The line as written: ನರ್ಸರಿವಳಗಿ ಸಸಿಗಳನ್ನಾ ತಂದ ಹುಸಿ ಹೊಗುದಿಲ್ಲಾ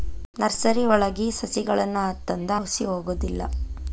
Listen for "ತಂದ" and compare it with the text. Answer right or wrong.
right